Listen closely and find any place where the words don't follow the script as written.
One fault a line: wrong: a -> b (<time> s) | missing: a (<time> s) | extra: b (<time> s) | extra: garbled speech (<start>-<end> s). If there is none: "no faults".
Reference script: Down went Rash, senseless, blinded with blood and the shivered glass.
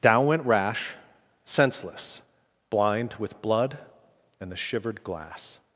wrong: blinded -> blind (2.7 s)